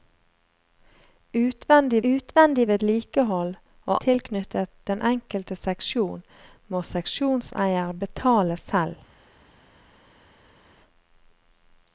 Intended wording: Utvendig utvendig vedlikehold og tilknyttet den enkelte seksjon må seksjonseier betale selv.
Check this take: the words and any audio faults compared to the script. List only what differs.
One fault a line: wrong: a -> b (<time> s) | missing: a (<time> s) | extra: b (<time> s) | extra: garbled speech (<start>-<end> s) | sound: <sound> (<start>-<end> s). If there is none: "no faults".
no faults